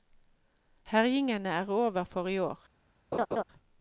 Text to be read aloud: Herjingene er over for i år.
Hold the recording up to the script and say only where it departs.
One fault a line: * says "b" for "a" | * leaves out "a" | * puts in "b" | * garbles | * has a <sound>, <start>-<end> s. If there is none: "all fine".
* has a laugh, 3.1-3.4 s